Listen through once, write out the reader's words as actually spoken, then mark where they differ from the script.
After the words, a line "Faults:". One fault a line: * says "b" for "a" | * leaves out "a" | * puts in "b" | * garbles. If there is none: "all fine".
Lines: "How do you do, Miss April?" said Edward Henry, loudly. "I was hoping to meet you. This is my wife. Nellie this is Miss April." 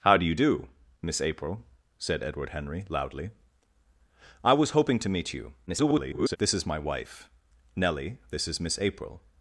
"How do you do, Miss April?" said Edward Henry, loudly. "I was hoping to meet you. [garbled] This is my wife. Nellie this is Miss April."
Faults:
* garbles